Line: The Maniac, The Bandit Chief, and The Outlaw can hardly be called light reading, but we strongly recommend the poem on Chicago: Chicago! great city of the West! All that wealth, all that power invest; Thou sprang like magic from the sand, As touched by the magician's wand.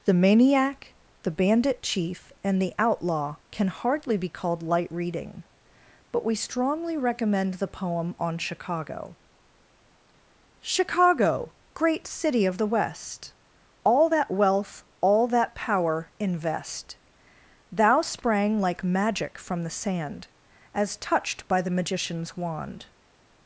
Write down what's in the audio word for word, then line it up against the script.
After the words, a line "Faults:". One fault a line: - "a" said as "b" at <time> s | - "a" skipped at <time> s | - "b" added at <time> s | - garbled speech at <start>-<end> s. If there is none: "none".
The Maniac, The Bandit Chief, and The Outlaw can hardly be called light reading, but we strongly recommend the poem on Chicago: Chicago! great city of the West! All that wealth, all that power invest; Thou sprang like magic from the sand, As touched by the magician's wand.
Faults:
none